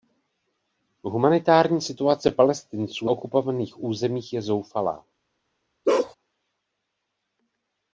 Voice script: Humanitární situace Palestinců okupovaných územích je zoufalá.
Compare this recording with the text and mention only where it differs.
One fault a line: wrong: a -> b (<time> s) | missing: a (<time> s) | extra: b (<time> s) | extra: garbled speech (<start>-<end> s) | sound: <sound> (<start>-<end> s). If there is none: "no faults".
sound: bark (5.9-6.2 s)